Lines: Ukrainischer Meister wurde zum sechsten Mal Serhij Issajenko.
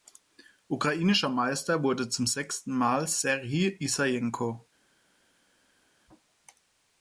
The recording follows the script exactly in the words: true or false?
true